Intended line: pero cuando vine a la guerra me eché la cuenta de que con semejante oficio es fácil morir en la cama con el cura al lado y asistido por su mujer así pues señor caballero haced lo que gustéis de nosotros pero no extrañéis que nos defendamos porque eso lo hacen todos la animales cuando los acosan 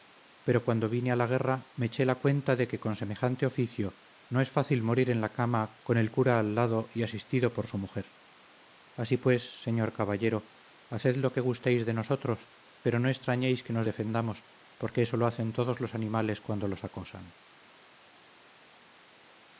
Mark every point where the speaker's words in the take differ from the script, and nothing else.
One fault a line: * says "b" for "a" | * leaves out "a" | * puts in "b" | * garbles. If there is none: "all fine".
* puts in "no"
* says "los" for "la"